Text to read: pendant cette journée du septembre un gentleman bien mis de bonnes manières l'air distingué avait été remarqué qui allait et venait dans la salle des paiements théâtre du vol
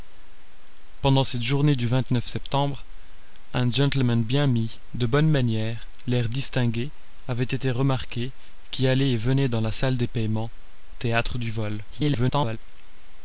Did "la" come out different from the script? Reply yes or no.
no